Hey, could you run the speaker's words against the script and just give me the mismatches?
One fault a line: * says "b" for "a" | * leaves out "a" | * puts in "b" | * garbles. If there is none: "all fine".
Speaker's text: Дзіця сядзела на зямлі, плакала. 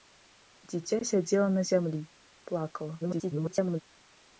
* garbles